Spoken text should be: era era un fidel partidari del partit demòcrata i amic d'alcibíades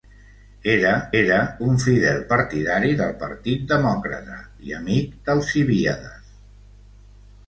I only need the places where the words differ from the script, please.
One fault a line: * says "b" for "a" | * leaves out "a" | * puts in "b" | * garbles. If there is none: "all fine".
all fine